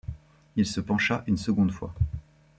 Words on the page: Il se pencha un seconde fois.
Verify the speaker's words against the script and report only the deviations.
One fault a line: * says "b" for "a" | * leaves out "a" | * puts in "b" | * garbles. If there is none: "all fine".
* says "une" for "un"